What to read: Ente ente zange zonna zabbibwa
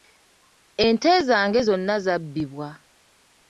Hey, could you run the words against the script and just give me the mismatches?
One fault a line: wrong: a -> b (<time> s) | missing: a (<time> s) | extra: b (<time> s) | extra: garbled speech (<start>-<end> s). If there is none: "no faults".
missing: ente (1.1 s)